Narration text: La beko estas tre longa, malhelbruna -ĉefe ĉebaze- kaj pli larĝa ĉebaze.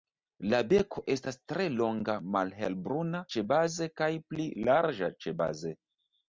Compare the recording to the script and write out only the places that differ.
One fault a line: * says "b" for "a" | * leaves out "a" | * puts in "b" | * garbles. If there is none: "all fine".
* leaves out "ĉefe"